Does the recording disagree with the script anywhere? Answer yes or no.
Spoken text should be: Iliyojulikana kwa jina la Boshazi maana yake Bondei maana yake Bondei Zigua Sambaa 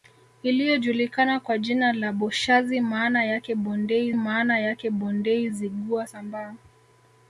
no